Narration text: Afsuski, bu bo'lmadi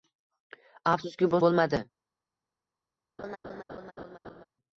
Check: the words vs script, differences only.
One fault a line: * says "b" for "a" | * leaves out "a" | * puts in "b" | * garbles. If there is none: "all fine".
all fine